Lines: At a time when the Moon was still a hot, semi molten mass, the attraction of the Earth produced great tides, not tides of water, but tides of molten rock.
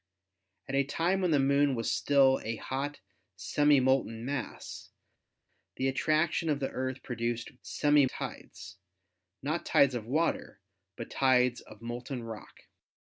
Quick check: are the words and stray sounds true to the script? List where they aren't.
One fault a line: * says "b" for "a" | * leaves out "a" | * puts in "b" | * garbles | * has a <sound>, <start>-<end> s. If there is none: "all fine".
* says "semi" for "great"